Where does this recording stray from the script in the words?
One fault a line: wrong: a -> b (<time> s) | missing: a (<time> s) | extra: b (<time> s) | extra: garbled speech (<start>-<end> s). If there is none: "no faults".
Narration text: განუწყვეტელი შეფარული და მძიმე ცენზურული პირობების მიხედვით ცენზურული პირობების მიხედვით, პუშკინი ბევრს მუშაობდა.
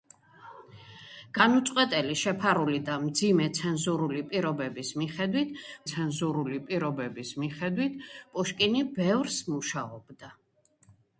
no faults